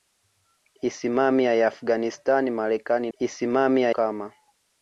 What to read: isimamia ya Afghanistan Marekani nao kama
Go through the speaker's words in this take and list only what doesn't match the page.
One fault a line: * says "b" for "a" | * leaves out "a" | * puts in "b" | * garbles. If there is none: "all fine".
* says "isimamia" for "nao"